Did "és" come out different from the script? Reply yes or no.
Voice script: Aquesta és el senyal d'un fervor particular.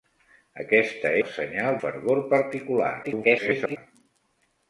yes